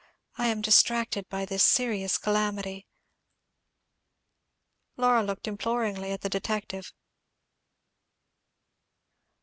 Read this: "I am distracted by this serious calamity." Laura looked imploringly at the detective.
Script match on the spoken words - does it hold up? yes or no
yes